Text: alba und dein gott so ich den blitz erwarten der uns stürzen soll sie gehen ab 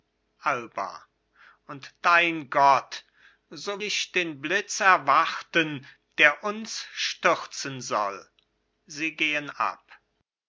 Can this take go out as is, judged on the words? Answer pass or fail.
pass